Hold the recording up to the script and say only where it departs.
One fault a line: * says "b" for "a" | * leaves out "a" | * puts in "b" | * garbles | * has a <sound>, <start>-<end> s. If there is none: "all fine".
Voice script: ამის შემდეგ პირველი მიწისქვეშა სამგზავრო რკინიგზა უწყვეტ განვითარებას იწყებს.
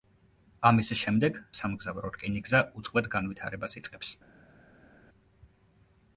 * leaves out "პირველი მიწისქვეშა"